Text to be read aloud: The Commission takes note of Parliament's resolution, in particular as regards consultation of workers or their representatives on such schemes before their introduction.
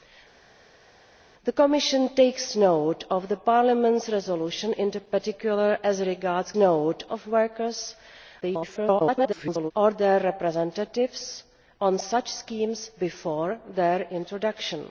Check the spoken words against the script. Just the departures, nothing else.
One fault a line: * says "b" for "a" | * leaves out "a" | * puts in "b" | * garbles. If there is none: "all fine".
* says "note" for "consultation"
* garbles